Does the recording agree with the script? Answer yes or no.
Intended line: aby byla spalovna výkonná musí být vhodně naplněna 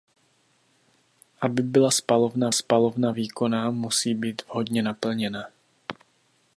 no